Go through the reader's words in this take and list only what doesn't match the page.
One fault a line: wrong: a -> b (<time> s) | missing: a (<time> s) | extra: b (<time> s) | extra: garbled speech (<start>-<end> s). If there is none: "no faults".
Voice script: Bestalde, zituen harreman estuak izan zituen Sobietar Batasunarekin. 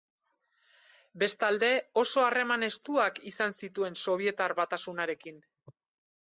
wrong: zituen -> oso (2.0 s)